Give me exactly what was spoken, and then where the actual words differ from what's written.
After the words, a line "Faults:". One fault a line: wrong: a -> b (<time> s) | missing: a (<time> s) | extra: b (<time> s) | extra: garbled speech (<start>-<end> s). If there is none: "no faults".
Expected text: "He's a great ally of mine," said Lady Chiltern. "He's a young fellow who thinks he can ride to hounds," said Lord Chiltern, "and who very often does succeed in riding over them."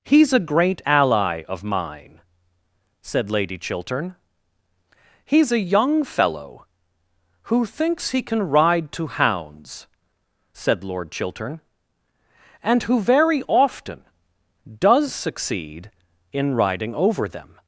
"He's a great ally of mine," said Lady Chiltern. "He's a young fellow who thinks he can ride to hounds," said Lord Chiltern, "and who very often does succeed in riding over them."
Faults:
no faults